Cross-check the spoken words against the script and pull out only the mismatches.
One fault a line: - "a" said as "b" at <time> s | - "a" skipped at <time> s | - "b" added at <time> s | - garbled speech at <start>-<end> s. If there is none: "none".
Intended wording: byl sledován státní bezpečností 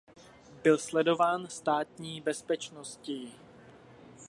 none